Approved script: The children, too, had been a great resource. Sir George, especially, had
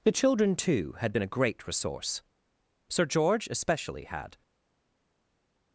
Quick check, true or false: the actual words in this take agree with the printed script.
true